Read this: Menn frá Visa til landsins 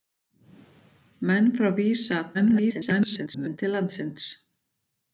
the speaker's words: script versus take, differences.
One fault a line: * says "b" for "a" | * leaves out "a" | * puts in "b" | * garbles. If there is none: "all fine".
* garbles